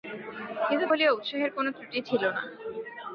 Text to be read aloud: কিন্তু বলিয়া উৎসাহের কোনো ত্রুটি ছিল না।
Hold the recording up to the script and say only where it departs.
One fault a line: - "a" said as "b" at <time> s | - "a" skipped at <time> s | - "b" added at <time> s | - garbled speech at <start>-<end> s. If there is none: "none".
none